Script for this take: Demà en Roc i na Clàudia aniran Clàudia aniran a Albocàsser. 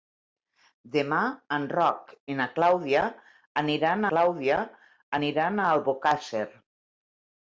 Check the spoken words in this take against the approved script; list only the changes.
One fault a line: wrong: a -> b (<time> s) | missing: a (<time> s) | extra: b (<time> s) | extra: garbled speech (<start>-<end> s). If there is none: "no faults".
no faults